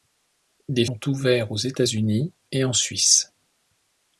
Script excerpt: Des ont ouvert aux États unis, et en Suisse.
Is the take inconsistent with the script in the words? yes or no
no